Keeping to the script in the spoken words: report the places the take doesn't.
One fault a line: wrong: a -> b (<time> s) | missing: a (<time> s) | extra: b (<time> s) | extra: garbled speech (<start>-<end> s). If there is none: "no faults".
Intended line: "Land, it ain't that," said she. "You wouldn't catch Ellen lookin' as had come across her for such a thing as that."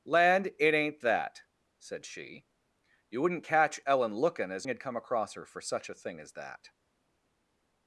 no faults